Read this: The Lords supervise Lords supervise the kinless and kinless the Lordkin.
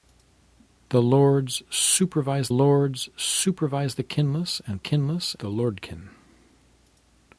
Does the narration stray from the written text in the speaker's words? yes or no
no